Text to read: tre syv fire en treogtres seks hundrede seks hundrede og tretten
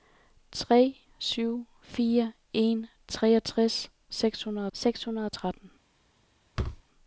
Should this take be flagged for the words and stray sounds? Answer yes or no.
yes